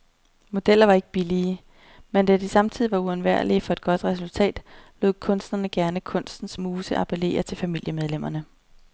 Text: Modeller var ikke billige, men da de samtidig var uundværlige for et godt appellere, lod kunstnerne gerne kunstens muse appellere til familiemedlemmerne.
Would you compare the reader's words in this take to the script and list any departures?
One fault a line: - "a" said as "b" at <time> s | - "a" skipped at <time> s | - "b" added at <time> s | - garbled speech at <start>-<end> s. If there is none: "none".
- "appellere" said as "resultat" at 4.0 s